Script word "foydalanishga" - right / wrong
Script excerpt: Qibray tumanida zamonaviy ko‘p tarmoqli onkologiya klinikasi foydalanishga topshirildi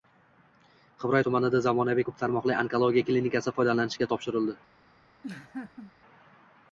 right